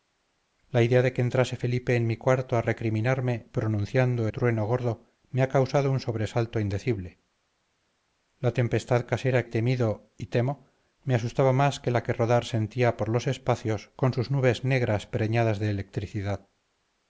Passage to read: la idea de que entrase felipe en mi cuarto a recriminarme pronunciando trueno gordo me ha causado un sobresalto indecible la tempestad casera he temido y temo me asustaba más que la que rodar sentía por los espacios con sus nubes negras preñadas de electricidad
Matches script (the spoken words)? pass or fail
pass